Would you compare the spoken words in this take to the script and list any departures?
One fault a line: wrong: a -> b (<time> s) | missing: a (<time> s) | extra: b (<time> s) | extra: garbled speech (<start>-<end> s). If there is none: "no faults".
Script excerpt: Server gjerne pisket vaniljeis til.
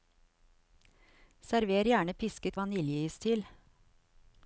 no faults